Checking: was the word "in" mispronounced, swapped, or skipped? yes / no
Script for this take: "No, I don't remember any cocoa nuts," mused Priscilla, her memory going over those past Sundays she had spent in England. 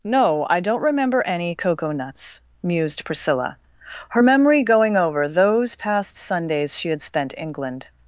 yes